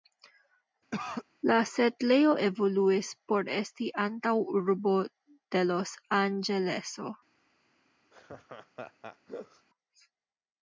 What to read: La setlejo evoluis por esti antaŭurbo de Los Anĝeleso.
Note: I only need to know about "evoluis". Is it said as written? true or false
true